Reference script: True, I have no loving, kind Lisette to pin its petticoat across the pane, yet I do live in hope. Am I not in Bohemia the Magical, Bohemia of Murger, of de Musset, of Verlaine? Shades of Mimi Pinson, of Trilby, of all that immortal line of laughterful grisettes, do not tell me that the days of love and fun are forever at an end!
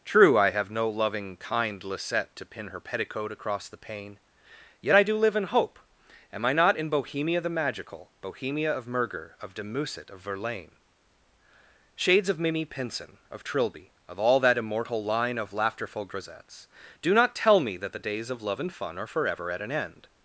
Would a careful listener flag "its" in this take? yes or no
yes